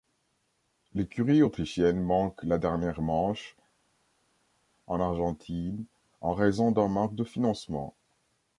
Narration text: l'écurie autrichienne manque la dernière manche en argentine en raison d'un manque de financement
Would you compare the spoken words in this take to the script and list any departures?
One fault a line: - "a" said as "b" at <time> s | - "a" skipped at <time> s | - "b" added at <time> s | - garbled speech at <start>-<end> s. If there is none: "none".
none